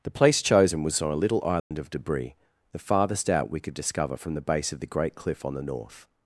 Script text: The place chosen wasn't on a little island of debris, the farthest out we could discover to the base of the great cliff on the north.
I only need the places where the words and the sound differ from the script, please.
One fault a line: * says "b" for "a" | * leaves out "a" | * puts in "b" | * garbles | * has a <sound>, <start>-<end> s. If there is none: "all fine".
* says "was" for "wasn't"
* has a dropout, 1.6-1.7 s
* says "from" for "to"